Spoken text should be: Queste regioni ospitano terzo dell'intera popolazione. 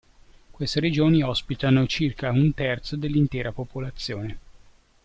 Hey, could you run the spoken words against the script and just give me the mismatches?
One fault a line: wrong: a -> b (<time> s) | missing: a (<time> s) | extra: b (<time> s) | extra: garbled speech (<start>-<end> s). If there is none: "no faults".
extra: circa un (1.9 s)